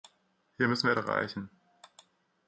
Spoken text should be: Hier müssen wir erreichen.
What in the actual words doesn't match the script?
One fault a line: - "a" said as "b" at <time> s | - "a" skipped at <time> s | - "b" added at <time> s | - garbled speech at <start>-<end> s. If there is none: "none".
none